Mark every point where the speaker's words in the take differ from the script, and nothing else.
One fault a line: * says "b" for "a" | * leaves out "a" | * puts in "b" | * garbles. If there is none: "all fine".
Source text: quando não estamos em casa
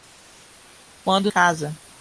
* leaves out "não estamos em"